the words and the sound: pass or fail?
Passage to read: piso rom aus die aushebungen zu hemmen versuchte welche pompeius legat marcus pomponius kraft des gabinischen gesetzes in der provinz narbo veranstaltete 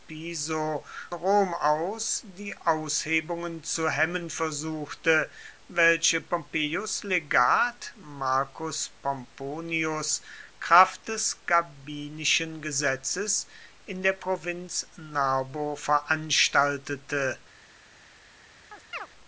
fail